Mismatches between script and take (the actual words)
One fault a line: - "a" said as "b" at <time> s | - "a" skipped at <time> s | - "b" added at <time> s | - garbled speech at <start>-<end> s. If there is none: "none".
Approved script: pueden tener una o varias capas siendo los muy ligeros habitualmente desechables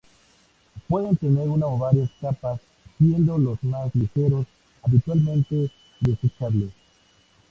- "muy" said as "más" at 3.6 s